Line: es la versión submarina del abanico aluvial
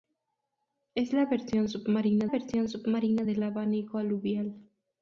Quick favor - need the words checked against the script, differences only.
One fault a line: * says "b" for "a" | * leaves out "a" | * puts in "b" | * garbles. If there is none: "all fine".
* puts in "versión submarina"